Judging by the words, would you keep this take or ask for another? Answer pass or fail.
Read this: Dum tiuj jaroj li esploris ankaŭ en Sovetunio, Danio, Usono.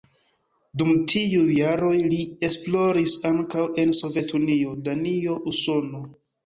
pass